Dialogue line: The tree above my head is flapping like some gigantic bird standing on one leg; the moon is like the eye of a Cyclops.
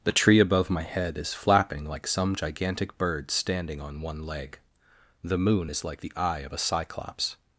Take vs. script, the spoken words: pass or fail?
pass